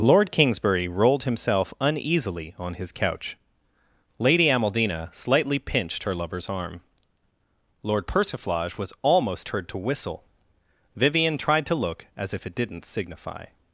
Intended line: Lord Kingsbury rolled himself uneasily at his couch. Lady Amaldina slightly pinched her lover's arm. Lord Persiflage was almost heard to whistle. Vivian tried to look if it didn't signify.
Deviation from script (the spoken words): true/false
true